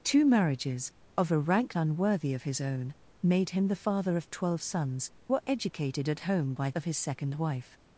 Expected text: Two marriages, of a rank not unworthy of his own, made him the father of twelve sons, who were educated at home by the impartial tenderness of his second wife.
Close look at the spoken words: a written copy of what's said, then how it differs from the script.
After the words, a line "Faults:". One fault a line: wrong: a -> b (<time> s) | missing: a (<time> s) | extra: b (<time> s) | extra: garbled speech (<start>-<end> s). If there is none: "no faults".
Two marriages, of a rank unworthy of his own, made him the father of twelve sons, were educated at home by of his second wife.
Faults:
missing: not (1.8 s)
missing: who (5.1 s)
missing: the impartial tenderness (6.7 s)